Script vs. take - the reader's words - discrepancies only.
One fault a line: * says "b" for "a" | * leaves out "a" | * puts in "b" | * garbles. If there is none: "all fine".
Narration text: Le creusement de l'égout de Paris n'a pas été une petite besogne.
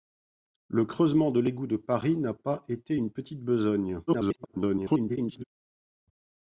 * garbles